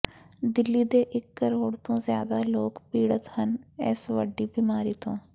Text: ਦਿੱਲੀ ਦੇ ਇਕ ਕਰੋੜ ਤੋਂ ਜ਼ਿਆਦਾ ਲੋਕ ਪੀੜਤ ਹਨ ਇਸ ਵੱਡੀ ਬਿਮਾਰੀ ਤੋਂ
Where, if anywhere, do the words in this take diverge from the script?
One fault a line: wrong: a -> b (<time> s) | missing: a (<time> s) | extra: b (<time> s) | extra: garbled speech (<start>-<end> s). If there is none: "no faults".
no faults